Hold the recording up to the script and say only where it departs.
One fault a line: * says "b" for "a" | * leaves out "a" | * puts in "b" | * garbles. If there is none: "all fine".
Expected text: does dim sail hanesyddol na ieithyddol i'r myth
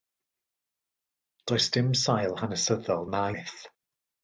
* leaves out "ieithyddol i'r"